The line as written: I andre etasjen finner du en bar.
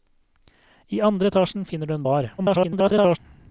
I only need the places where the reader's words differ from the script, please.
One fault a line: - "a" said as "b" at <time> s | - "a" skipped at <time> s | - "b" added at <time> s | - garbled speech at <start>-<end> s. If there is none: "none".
- garbled speech at 2.4-3.2 s